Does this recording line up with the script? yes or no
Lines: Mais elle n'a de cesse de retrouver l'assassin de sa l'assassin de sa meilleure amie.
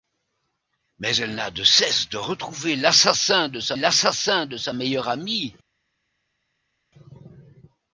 yes